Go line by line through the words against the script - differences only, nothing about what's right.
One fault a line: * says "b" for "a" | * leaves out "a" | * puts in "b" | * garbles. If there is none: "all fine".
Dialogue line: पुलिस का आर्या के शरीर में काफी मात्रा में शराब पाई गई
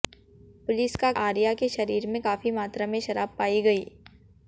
all fine